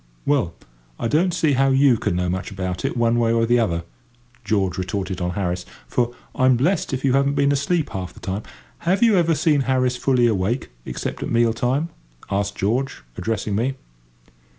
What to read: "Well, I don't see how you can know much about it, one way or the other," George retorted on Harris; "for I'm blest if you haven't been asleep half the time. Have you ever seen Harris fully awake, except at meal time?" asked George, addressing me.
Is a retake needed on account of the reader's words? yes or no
no